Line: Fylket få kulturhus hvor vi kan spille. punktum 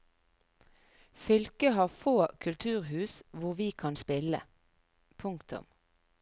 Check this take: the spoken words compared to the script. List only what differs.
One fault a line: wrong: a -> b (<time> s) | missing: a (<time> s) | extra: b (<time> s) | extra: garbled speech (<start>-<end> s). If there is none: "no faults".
extra: har (1.7 s)